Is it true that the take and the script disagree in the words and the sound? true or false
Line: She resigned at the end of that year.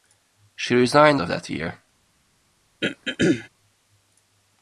true